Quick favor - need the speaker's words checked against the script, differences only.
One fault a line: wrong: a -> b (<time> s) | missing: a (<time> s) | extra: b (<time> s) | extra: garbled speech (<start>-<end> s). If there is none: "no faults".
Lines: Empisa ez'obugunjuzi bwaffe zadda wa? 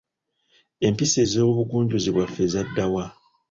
no faults